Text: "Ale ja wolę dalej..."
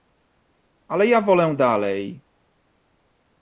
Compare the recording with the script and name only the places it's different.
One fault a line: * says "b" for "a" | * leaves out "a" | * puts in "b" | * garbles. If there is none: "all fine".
all fine